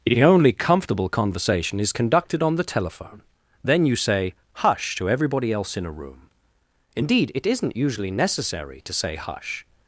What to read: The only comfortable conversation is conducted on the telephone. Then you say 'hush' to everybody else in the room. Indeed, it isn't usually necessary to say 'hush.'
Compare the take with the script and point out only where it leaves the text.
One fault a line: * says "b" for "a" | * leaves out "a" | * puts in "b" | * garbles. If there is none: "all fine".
* says "a" for "the"